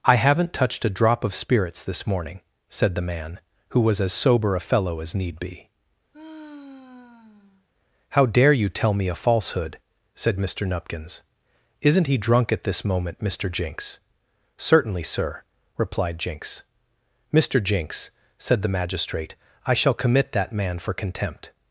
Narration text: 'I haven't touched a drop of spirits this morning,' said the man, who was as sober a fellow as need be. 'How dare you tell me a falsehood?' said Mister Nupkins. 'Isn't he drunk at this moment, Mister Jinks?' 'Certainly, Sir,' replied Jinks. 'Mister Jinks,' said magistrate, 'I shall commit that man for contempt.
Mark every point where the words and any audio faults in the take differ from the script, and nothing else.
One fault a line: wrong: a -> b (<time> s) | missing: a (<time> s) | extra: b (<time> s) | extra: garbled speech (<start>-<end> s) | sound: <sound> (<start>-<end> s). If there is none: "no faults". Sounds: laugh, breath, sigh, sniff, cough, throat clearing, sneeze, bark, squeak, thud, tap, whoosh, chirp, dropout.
sound: sigh (6.1-7.7 s)
extra: the (18.6 s)